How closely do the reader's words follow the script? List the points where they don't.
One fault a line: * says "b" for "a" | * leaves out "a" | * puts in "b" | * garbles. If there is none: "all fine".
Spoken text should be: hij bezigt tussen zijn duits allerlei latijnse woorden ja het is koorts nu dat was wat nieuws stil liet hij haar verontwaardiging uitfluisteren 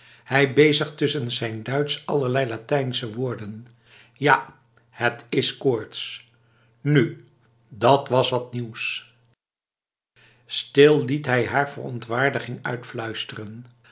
all fine